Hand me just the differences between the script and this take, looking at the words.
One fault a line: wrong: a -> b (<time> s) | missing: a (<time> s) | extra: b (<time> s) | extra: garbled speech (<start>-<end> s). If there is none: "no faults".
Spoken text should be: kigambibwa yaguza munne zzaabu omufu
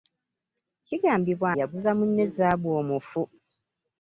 no faults